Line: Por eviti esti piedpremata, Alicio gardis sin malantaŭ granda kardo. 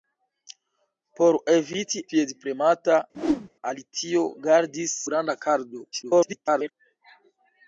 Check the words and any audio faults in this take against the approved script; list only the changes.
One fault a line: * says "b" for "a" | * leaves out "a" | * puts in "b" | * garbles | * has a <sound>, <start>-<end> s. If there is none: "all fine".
* leaves out "esti"
* has a whoosh, 3.1-3.5 s
* leaves out "sin malantaŭ"
* garbles